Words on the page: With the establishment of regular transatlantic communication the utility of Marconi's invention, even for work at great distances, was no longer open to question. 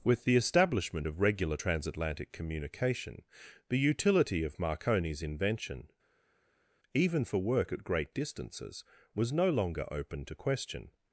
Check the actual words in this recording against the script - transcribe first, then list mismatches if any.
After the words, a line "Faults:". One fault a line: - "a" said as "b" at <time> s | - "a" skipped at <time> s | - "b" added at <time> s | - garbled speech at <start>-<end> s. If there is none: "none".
With the establishment of regular transatlantic communication the utility of Marconi's invention, even for work at great distances, was no longer open to question.
Faults:
none